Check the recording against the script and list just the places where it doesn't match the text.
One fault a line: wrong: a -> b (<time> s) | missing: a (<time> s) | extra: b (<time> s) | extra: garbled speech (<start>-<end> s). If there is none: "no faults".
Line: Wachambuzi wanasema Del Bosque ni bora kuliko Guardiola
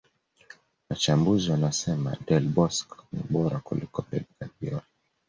extra: Pep (4.0 s)